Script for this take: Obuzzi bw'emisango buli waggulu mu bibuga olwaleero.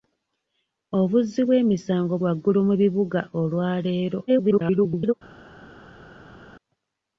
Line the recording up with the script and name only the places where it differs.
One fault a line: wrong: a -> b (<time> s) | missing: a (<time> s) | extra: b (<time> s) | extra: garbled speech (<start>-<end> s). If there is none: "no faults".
missing: buli (2.1 s)
extra: garbled speech (4.3-5.1 s)